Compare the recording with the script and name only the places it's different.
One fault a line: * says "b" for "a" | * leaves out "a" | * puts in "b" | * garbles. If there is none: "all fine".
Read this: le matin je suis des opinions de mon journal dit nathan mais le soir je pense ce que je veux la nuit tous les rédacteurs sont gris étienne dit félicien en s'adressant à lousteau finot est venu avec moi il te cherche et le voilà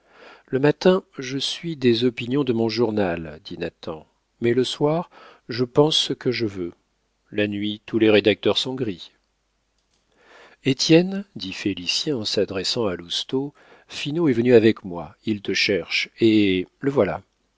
all fine